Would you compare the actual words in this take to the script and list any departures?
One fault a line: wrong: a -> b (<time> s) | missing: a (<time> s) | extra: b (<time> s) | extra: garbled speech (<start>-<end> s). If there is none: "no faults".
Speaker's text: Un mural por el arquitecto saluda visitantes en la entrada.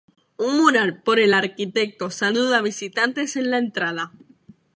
no faults